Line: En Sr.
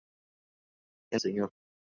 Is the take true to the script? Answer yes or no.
yes